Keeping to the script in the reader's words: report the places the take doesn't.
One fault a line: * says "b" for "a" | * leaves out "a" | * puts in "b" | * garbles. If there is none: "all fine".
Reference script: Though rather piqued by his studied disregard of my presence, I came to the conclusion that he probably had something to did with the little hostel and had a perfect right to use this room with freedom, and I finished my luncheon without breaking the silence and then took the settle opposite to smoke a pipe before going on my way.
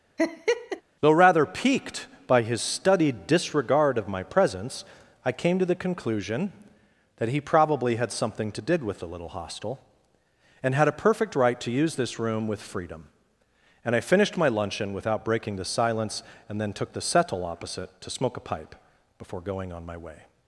all fine